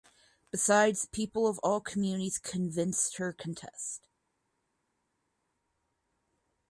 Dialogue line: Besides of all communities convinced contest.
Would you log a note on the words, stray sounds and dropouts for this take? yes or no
yes